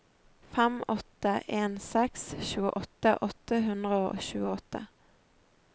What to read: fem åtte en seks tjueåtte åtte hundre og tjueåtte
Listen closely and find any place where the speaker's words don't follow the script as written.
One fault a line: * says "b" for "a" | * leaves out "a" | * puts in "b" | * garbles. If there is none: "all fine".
all fine